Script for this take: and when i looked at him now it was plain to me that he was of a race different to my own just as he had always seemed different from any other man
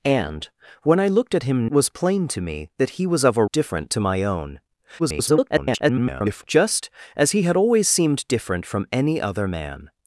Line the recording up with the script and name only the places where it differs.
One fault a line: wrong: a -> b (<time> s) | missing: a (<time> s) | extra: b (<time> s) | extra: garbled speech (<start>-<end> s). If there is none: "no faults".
missing: now it (1.7 s)
missing: race (3.4 s)
extra: garbled speech (5.0-6.4 s)